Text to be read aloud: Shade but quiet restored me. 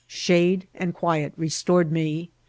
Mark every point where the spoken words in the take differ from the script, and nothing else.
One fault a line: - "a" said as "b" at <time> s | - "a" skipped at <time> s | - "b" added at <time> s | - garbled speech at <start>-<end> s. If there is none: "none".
- "but" said as "and" at 0.8 s